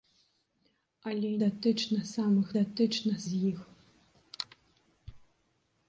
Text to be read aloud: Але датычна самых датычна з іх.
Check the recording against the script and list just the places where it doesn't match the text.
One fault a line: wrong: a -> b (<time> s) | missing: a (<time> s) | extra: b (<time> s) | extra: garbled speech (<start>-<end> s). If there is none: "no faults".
no faults